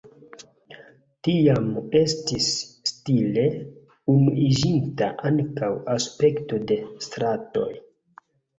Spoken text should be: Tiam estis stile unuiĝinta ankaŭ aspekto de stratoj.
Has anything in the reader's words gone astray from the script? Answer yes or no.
no